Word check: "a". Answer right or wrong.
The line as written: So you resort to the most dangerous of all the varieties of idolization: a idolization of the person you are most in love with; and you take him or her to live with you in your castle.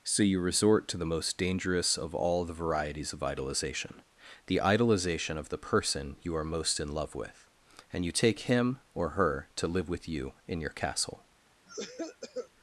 wrong